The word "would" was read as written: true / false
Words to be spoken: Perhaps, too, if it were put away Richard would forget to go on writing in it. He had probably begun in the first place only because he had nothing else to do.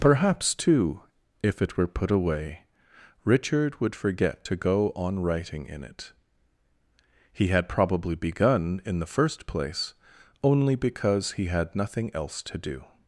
true